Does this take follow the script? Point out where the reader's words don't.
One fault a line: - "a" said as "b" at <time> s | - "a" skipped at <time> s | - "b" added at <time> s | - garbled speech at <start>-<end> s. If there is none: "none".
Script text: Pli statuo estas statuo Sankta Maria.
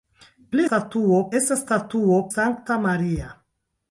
none